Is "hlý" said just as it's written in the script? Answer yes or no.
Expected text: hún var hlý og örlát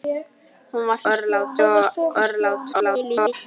no